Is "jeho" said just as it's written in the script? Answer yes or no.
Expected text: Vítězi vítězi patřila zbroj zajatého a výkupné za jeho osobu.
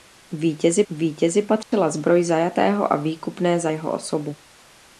yes